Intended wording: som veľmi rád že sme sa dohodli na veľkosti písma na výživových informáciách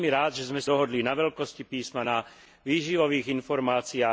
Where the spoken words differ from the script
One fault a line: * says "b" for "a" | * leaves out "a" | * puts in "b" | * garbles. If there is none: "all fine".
* leaves out "sa"